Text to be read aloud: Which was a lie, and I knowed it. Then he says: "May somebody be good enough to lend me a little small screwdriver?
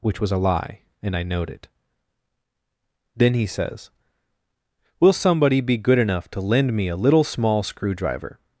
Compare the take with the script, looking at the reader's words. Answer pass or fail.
fail